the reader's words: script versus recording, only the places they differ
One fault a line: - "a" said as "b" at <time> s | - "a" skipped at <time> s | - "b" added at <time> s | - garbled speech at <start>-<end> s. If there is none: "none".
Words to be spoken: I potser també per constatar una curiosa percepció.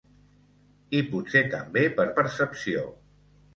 - "constatar una curiosa" skipped at 2.1 s